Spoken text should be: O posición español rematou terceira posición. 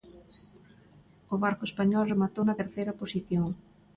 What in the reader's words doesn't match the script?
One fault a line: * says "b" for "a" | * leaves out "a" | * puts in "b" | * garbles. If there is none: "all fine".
* says "barco" for "posición"
* puts in "na"